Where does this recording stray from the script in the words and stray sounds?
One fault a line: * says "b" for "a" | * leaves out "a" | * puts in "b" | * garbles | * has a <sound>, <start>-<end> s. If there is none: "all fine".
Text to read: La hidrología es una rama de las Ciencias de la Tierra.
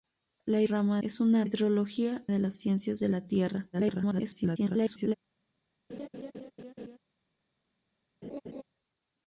* says "rama" for "hidrología"
* says "hidrología" for "rama"
* garbles
* has a laugh, 5.9-7.0 s
* has a laugh, 8.2-8.6 s